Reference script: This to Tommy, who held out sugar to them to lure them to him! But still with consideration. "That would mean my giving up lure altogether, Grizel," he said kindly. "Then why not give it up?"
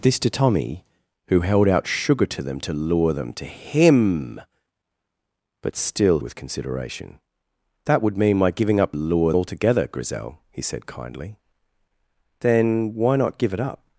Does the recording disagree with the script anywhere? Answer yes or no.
no